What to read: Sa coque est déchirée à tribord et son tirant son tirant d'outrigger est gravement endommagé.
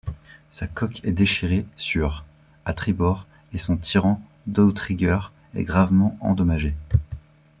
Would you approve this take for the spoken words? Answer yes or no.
no